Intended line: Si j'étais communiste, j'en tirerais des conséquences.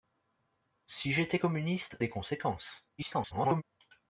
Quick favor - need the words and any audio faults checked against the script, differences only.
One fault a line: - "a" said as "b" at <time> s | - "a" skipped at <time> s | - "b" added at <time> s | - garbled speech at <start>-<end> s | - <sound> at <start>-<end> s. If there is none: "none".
- "j'en tirerais" skipped at 2.0 s
- garbled speech at 3.0-3.6 s